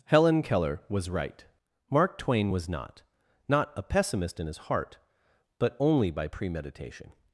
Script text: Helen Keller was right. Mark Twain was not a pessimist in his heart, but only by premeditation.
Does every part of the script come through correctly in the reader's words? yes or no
no